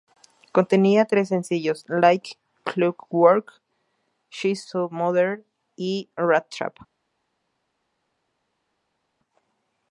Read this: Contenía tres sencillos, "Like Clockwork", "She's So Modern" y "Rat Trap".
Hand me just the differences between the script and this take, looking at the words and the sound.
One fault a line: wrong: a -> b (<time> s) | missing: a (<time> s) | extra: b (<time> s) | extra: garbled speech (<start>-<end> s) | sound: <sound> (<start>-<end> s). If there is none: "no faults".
no faults